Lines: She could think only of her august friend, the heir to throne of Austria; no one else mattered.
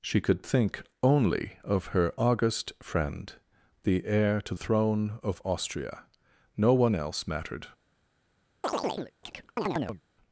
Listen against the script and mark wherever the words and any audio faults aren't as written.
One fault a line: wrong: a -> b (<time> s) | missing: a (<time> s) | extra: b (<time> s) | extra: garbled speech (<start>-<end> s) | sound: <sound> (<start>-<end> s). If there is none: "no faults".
sound: chirp (8.6-10.0 s)